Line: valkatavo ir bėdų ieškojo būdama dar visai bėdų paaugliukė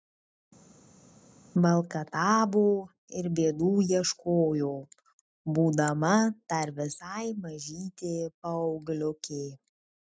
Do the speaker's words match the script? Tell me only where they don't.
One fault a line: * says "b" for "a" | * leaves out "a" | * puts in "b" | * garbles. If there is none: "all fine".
* says "mažytė" for "bėdų"